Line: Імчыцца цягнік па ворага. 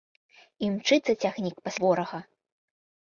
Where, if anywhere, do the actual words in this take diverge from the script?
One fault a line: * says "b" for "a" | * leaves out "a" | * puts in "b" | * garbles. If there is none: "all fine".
all fine